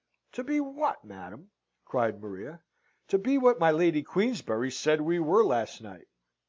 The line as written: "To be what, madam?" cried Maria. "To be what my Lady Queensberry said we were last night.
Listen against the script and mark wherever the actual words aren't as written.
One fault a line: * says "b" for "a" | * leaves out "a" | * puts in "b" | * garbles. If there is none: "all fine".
all fine